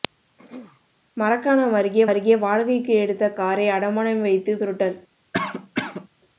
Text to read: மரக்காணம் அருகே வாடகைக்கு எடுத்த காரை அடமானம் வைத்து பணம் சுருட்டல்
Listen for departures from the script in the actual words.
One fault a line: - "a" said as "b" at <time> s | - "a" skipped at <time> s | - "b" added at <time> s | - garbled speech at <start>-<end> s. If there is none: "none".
- "அருகே" added at 2.1 s
- "பணம்" skipped at 4.5 s